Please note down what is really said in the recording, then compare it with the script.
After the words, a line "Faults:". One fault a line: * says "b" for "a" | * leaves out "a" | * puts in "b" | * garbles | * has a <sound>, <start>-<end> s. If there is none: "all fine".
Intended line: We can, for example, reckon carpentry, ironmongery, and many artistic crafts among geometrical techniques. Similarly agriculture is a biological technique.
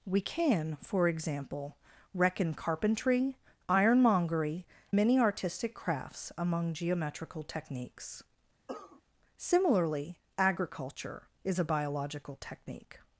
We can, for example, reckon carpentry, ironmongery, many artistic crafts among geometrical techniques. Similarly agriculture is a biological technique.
Faults:
* leaves out "and"
* has a cough, 8.7-9.0 s